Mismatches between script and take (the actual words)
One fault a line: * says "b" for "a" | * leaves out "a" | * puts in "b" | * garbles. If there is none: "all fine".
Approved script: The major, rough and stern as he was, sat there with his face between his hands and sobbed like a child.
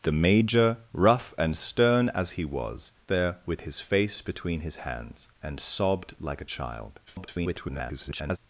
* leaves out "sat"
* garbles